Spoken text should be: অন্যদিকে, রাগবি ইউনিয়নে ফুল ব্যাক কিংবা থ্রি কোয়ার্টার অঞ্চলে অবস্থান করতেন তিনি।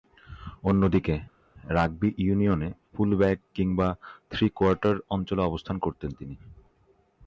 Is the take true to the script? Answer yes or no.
yes